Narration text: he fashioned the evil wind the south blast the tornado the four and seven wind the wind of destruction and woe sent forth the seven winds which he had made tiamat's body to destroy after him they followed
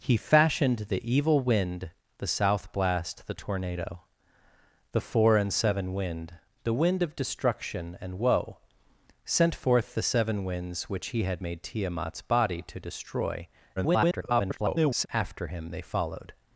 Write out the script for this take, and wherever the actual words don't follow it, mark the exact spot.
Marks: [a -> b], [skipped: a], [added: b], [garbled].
he fashioned the evil wind the south blast the tornado the four and seven wind the wind of destruction and woe sent forth the seven winds which he had made tiamat's body to destroy [garbled] after him they followed